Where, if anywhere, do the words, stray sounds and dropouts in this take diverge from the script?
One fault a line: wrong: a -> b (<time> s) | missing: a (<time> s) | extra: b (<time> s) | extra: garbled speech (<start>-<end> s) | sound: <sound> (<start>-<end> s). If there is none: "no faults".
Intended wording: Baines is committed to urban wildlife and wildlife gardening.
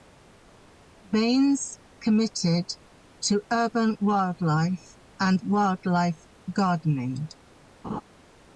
missing: is (1.8 s)
sound: laugh (7.8-8.0 s)